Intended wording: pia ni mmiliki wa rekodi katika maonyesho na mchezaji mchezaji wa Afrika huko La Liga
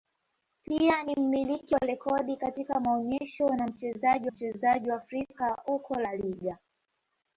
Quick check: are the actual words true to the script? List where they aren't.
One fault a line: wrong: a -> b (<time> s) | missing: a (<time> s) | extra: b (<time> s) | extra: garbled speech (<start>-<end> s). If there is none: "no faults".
no faults